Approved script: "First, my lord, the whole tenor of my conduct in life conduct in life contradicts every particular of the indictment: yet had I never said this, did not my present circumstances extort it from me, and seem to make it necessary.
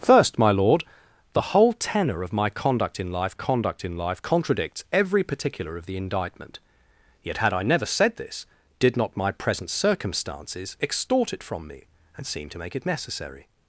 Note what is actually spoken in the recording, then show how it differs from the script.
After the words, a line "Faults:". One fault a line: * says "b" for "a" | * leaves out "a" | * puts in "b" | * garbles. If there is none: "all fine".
"First, my lord, the whole tenor of my conduct in life conduct in life contradicts every particular of the indictment: yet had I never said this, did not my present circumstances extort it from me, and seem to make it necessary.
Faults:
all fine